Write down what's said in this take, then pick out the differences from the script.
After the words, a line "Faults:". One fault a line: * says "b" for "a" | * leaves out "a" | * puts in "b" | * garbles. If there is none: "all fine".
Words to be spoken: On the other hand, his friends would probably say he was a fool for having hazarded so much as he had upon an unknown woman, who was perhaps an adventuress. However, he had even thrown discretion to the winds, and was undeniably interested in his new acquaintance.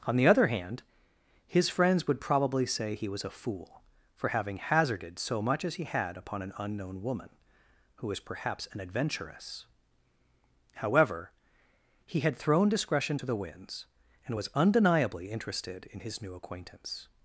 On the other hand, his friends would probably say he was a fool for having hazarded so much as he had upon an unknown woman, who was perhaps an adventuress. However, he had thrown discretion to the winds, and was undeniably interested in his new acquaintance.
Faults:
* leaves out "even"